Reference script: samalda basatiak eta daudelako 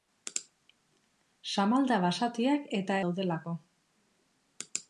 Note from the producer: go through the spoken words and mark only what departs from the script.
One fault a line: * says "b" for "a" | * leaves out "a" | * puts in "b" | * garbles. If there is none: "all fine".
all fine